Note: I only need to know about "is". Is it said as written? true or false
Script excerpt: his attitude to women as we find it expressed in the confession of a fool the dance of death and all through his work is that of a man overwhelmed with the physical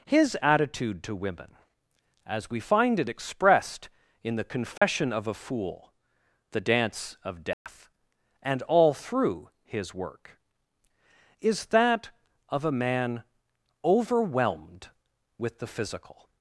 true